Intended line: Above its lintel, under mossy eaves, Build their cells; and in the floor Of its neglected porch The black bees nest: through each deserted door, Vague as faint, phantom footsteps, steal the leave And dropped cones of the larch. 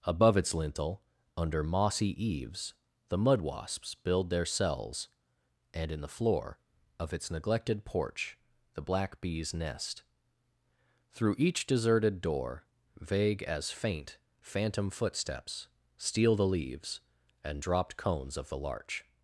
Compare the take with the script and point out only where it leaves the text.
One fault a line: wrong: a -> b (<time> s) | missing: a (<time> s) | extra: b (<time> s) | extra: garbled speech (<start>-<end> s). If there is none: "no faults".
extra: The mud wasps (3.1 s)
wrong: leave -> leaves (16.5 s)